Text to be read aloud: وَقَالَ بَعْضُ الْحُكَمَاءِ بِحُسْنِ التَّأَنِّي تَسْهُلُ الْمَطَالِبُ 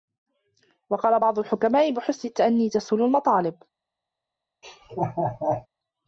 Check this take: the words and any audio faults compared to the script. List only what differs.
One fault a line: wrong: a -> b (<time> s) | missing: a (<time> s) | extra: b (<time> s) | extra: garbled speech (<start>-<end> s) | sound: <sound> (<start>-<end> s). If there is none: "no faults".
sound: laugh (4.6-5.7 s)